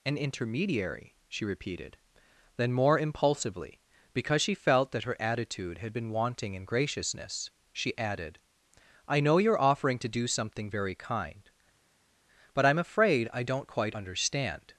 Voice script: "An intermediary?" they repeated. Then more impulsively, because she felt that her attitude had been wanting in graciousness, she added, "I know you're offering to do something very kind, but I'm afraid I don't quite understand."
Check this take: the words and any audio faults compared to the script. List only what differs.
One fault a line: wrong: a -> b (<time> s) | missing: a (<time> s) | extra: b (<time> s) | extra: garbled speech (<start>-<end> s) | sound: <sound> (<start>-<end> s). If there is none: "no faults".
wrong: they -> she (1.3 s)